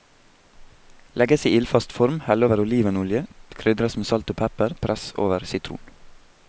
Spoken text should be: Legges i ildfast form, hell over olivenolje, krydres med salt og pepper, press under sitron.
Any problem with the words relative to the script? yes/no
yes